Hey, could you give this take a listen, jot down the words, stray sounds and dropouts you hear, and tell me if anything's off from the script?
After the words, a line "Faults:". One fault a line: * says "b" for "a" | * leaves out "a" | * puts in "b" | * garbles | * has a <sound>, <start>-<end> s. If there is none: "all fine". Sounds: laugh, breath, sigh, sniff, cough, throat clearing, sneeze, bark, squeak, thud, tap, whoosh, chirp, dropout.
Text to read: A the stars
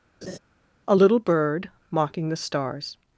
A little bird mocking the stars
Faults:
* has a laugh, 0.2-0.4 s
* puts in "little bird mocking"